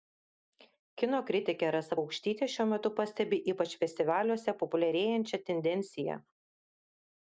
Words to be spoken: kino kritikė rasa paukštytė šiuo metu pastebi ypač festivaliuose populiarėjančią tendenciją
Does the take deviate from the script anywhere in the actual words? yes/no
no